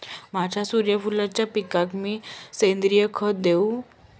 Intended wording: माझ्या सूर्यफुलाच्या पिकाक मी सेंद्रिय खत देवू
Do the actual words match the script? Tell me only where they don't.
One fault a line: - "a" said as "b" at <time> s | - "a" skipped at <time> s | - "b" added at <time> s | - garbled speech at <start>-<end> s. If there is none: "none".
none